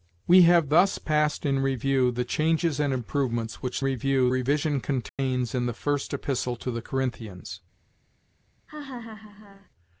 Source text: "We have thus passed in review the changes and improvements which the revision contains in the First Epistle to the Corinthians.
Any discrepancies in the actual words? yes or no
yes